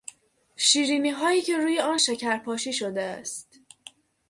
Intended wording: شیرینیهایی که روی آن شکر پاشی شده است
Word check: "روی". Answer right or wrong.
right